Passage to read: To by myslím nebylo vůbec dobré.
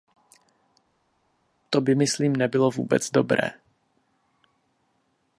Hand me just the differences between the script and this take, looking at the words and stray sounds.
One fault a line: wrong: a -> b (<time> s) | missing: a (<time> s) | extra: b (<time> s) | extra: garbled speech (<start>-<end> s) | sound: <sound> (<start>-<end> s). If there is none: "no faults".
no faults